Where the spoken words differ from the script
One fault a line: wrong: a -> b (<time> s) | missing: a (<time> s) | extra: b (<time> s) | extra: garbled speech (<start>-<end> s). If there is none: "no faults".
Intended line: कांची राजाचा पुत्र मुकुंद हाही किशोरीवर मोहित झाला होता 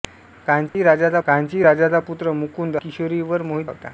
extra: कांची राजाचा (1.3 s)
missing: हाही (2.8 s)
missing: झाला (3.7 s)